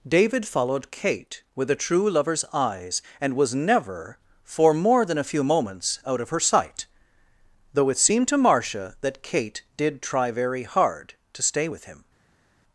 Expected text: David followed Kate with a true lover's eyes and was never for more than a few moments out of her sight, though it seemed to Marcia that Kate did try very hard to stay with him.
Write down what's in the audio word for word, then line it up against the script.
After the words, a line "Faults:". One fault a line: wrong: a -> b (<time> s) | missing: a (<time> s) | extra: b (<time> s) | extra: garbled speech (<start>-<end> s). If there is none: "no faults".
David followed Kate with a true lover's eyes and was never for more than a few moments out of her sight, though it seemed to Marcia that Kate did try very hard to stay with him.
Faults:
no faults